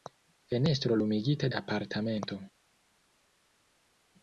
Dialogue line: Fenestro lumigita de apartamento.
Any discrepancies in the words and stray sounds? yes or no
yes